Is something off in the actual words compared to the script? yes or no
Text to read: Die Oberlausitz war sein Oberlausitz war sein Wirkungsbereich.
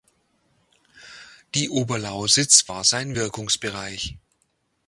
yes